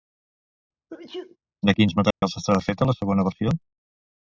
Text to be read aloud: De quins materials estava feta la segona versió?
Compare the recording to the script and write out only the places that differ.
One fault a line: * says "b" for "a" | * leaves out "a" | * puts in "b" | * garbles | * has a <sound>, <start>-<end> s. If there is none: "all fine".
* has a sneeze, 0.9-1.4 s
* has a dropout, 2.1-2.2 s